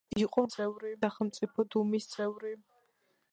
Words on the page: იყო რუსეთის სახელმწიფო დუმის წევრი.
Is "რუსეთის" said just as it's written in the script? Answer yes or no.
no